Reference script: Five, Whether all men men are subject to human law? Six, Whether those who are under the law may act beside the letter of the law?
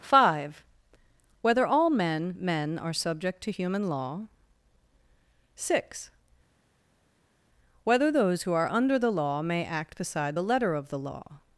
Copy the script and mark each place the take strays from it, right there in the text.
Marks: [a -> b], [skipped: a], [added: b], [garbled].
Five, Whether all men men are subject to human law? Six, Whether those who are under the law may act beside the letter of the law?